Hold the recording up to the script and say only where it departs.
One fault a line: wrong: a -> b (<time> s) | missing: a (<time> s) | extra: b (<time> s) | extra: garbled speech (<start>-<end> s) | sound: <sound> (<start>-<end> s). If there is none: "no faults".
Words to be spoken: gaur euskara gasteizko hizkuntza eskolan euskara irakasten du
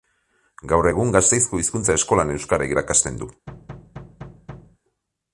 wrong: euskara -> egun (0.9 s)
sound: thud (3.5-4.8 s)